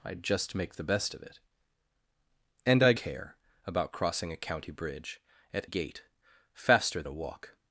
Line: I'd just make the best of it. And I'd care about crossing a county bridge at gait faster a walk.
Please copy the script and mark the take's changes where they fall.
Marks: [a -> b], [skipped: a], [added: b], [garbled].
I'd just make the best of it. And I'd care about crossing a county bridge at gait faster a walk.